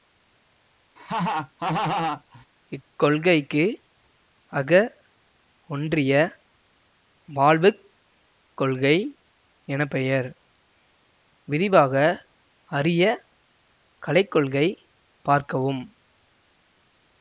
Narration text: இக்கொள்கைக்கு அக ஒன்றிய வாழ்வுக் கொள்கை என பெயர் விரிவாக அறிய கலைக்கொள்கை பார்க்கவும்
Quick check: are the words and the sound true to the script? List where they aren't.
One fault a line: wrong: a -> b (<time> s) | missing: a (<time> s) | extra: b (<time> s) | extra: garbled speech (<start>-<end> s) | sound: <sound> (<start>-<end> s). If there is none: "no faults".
sound: laugh (1.0-2.5 s)